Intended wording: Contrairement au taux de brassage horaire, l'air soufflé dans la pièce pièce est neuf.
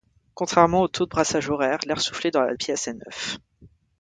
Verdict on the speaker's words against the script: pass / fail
fail